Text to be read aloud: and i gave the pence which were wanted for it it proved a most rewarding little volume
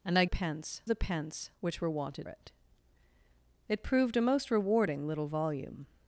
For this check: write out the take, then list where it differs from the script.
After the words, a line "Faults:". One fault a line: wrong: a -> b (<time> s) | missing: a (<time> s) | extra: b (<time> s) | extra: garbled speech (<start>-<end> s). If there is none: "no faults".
and i pence the pence which were wanted it it proved a most rewarding little volume
Faults:
wrong: gave -> pence (0.3 s)
missing: for (2.3 s)